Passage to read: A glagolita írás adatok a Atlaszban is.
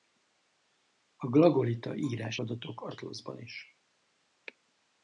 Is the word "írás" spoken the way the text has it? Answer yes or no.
yes